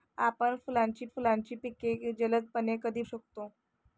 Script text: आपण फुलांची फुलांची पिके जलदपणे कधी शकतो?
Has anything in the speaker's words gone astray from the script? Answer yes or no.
no